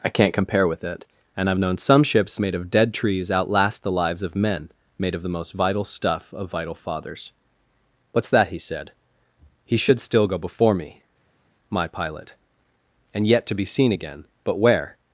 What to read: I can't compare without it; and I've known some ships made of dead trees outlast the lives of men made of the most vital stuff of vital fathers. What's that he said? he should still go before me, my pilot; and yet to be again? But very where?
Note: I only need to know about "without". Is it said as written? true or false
false